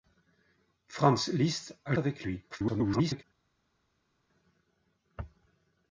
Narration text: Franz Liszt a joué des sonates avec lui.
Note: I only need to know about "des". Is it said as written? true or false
false